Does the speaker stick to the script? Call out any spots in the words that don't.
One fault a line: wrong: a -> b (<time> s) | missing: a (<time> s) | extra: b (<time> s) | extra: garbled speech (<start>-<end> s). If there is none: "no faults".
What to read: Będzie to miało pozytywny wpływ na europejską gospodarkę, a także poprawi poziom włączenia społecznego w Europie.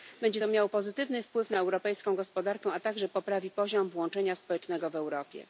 no faults